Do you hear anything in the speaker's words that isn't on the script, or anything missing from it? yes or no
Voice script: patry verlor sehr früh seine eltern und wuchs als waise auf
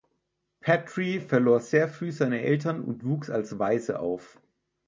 no